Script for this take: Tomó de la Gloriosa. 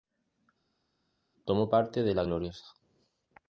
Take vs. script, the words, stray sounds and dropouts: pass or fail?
fail